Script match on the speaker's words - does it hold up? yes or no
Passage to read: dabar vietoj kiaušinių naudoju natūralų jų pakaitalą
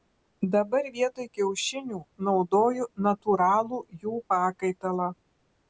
yes